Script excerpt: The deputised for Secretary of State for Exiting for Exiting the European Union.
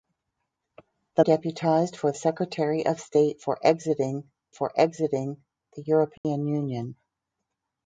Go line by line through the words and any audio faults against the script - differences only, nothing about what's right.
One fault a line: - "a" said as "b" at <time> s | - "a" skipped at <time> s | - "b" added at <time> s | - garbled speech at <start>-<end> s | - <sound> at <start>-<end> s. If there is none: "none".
- dropout at 6.2-6.2 s